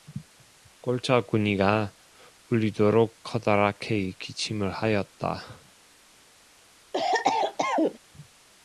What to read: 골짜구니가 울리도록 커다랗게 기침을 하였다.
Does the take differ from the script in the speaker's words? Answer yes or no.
no